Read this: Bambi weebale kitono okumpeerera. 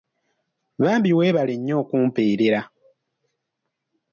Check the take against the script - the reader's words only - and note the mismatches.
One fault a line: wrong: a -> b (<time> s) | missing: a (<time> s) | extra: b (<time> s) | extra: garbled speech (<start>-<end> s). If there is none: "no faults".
wrong: kitono -> nnyo (1.6 s)